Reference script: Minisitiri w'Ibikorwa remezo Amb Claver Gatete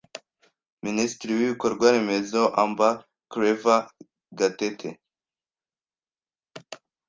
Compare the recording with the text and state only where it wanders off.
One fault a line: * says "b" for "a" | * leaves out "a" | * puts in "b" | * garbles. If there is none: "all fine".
all fine